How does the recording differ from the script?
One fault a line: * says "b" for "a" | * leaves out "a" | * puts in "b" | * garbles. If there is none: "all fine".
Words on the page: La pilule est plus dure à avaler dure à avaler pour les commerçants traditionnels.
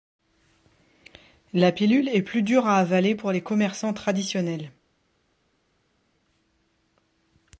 * leaves out "dure à avaler"